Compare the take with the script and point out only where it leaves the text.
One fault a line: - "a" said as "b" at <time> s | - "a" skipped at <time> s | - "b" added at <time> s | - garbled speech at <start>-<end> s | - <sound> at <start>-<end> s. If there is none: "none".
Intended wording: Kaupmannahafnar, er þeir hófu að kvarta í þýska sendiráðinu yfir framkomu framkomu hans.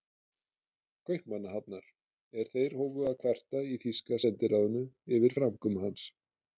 - "framkomu" skipped at 5.9 s